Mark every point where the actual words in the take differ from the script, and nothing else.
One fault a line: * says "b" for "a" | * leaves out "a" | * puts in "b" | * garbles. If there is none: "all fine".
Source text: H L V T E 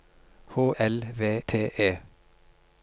all fine